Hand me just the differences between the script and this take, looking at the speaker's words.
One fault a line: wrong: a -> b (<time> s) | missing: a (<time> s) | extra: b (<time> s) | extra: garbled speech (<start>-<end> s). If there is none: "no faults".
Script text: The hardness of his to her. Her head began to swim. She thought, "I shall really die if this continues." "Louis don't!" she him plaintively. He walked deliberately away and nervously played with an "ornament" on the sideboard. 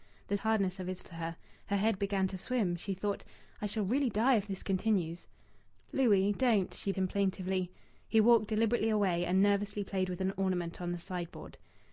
no faults